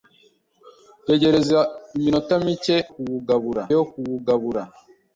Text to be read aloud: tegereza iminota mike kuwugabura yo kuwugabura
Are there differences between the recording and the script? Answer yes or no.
no